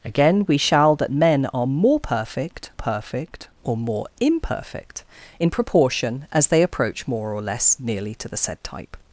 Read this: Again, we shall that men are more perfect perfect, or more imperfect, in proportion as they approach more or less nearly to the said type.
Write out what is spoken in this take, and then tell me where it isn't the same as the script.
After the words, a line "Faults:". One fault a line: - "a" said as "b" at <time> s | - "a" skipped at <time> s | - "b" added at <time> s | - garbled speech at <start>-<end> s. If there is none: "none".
Again, we shall that men are more perfect perfect, or more imperfect, in proportion as they approach more or less nearly to the said type.
Faults:
none